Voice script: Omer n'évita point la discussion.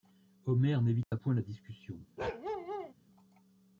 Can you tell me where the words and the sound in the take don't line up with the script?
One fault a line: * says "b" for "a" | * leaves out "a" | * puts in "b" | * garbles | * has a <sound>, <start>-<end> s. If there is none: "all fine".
* has a dropout, 1.0-1.1 s
* has a bark, 2.2-2.9 s